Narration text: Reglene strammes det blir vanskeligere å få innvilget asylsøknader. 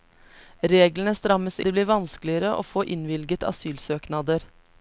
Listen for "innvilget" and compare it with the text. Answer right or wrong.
right